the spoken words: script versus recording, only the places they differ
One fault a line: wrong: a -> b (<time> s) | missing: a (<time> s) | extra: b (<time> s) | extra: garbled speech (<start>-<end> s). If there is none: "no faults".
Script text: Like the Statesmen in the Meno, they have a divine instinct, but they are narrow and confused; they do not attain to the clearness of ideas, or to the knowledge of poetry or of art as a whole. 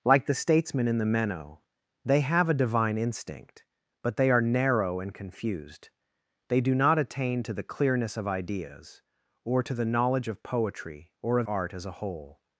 no faults